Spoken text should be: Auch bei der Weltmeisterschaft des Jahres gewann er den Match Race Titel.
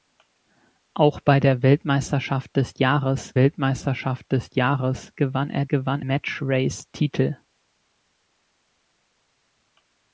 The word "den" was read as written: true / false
false